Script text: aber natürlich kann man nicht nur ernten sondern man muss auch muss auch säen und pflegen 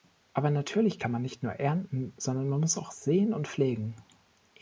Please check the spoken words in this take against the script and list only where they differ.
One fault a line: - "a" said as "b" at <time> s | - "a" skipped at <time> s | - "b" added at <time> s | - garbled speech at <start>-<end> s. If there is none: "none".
- "muss auch" skipped at 2.9 s